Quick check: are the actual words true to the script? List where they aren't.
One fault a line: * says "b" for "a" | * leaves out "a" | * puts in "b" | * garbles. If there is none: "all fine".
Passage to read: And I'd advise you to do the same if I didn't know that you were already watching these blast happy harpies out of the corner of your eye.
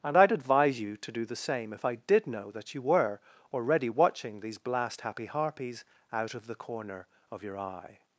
* says "did" for "didn't"